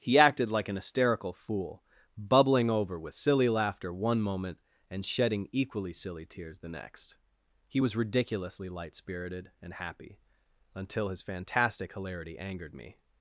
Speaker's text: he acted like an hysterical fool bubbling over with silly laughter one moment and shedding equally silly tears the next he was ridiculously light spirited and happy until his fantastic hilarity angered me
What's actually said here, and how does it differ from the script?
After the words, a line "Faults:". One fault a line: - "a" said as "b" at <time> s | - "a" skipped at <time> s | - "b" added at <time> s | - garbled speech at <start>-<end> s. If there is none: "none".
he acted like an hysterical fool bubbling over with silly laughter one moment and shedding equally silly tears the next he was ridiculously light spirited and happy until his fantastic hilarity angered me
Faults:
none